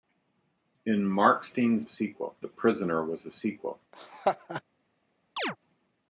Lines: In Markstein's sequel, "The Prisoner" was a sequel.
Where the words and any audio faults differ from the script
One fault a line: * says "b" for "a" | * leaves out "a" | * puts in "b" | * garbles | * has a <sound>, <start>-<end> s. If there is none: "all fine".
* has a laugh, 3.9-4.6 s
* has a chirp, 5.4-5.6 s